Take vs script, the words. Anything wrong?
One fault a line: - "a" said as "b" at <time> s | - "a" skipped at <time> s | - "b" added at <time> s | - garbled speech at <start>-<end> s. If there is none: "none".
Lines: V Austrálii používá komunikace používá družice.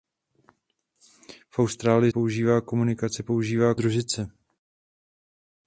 none